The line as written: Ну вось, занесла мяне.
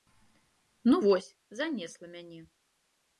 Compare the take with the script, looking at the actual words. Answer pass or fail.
pass